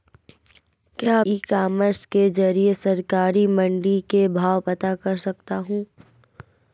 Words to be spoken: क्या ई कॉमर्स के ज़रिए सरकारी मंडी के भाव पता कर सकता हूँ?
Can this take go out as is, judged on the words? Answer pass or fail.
pass